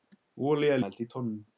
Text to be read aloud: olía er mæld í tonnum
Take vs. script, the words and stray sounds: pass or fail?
pass